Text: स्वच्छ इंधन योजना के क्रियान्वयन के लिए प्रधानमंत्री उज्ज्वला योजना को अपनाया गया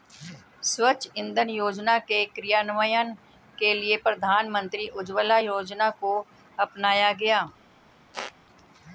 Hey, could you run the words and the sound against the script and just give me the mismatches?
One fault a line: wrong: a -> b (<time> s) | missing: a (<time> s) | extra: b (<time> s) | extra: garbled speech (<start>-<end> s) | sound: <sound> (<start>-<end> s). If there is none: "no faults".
sound: squeak (8.1-8.3 s)